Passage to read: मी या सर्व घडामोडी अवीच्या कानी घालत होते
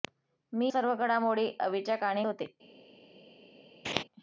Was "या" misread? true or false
true